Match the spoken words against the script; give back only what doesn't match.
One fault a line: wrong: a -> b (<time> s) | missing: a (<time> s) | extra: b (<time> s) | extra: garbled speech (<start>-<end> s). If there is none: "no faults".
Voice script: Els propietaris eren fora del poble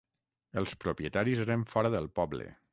no faults